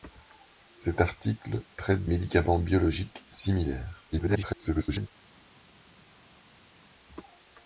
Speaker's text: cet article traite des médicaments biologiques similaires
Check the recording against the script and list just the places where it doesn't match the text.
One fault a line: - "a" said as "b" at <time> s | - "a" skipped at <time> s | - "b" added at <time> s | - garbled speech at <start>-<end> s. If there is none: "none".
- "des" skipped at 2.1 s
- garbled speech at 4.1-5.1 s